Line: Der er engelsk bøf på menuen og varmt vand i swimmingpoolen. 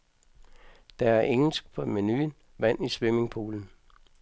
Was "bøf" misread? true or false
true